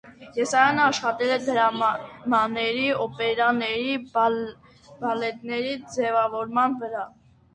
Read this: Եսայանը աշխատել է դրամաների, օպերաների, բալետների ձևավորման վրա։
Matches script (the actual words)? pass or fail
pass